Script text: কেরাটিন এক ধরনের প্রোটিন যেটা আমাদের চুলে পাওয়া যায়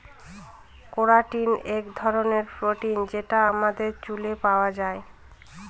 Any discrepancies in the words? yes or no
no